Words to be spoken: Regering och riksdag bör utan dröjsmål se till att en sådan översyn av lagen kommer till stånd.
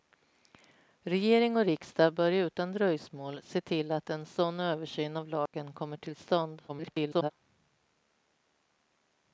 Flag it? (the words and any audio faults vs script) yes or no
yes